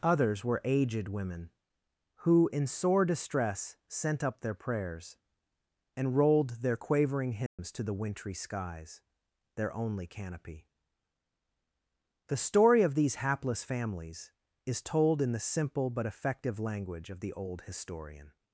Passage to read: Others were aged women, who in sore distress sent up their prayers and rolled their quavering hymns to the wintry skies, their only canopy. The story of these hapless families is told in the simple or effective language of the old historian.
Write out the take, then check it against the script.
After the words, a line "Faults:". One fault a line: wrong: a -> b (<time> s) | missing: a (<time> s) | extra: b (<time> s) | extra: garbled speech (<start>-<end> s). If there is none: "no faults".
Others were aged women, who in sore distress sent up their prayers and rolled their quavering hymns to the wintry skies, their only canopy. The story of these hapless families is told in the simple but effective language of the old historian.
Faults:
wrong: or -> but (15.9 s)